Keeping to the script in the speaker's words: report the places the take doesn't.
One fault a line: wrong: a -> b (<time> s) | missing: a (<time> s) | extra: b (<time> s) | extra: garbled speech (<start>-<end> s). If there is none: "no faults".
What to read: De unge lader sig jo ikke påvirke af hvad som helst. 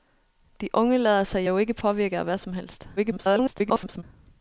extra: garbled speech (3.0-4.0 s)